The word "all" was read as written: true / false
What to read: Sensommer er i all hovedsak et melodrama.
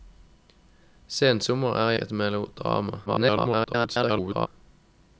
false